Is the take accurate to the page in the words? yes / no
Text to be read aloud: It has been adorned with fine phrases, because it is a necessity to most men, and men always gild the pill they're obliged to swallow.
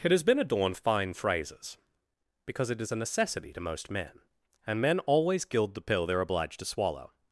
no